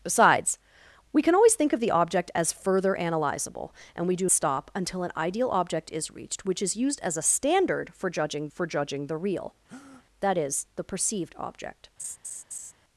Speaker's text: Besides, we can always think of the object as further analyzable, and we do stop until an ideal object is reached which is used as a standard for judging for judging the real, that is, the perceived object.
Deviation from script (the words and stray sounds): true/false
true